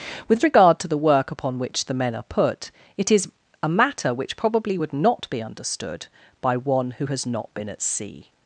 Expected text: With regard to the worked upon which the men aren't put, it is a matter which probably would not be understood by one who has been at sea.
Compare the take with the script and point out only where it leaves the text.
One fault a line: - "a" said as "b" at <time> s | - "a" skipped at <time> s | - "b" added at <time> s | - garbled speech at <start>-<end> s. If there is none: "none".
- "worked" said as "work" at 1.0 s
- "aren't" said as "are" at 2.1 s
- "not" added at 7.2 s